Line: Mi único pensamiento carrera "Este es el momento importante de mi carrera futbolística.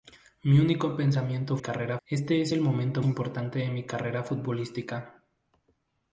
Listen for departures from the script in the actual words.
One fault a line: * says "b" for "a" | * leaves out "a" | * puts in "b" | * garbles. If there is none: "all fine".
all fine